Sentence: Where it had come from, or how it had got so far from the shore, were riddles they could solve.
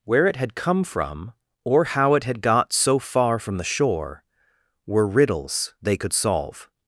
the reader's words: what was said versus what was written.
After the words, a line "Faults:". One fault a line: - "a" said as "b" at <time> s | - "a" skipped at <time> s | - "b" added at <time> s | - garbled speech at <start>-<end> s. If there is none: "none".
Where it had come from, or how it had got so far from the shore, were riddles they could solve.
Faults:
none